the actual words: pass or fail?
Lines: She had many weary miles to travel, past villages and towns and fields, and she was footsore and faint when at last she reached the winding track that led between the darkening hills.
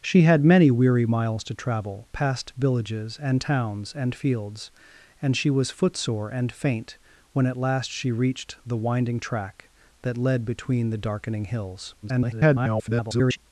fail